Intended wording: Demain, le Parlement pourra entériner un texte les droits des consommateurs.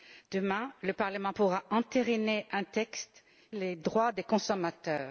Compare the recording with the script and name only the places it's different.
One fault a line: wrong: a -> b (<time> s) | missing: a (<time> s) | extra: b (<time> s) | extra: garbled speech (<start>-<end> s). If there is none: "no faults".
no faults